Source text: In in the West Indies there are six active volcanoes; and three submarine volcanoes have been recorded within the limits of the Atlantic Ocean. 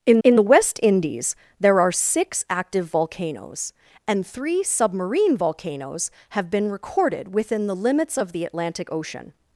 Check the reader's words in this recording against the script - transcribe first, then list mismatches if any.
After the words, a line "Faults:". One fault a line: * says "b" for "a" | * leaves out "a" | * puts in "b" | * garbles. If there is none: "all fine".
In in the West Indies there are six active volcanoes; and three submarine volcanoes have been recorded within the limits of the Atlantic Ocean.
Faults:
all fine